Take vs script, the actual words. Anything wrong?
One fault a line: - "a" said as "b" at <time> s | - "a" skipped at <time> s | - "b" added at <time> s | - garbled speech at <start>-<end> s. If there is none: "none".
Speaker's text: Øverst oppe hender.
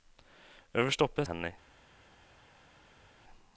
none